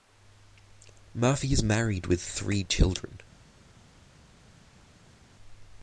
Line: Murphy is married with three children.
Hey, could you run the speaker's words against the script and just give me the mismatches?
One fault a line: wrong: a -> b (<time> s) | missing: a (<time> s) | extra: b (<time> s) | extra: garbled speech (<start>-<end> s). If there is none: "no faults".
no faults